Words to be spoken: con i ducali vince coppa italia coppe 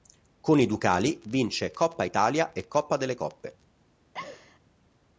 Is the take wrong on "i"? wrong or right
right